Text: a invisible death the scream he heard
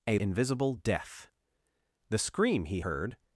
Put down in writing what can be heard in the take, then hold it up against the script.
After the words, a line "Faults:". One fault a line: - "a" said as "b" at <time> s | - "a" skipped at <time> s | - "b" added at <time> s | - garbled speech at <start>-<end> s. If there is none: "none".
a invisible death the scream he heard
Faults:
none